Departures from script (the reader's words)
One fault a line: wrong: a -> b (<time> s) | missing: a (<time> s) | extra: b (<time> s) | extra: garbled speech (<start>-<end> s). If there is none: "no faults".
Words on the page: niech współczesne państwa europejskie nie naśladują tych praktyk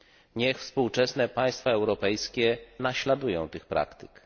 missing: nie (2.6 s)